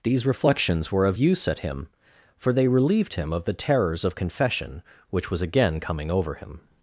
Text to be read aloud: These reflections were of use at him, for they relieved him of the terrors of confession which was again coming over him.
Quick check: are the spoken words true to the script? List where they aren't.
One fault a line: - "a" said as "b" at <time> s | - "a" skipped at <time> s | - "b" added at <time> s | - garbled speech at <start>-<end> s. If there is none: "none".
none